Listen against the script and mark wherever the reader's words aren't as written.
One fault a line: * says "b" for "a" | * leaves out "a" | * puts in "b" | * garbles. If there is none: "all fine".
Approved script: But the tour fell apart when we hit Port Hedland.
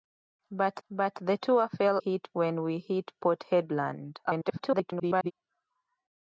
* puts in "but"
* says "hit" for "apart"
* garbles